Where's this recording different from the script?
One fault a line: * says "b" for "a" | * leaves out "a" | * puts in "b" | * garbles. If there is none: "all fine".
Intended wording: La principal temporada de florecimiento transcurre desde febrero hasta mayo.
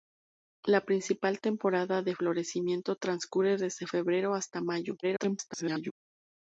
* garbles